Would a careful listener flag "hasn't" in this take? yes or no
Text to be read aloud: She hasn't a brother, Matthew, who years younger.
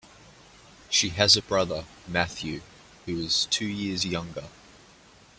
yes